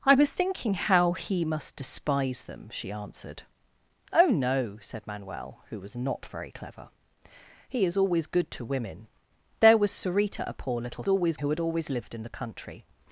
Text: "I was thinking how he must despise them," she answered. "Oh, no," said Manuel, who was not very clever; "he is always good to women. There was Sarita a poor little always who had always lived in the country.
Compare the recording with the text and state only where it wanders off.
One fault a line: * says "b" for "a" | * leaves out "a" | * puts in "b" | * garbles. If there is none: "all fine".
all fine